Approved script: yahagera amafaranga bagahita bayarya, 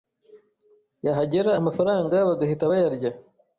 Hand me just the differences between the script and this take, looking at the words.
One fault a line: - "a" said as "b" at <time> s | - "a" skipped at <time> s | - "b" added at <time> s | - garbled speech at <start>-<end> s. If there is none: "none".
none